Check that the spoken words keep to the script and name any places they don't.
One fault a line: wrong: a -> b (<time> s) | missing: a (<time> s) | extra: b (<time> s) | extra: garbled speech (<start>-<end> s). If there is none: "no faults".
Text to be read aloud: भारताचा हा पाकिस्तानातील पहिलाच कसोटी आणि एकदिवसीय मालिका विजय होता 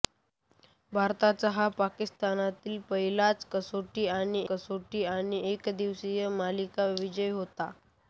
extra: कसोटी आणि (4.5 s)